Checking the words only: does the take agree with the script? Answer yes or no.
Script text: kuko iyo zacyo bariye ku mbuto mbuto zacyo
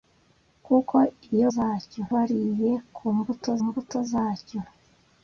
yes